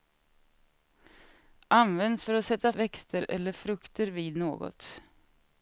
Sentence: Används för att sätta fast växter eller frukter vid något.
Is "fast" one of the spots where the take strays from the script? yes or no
yes